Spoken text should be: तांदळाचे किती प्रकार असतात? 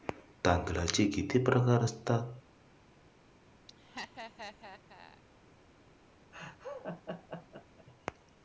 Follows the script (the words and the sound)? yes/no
no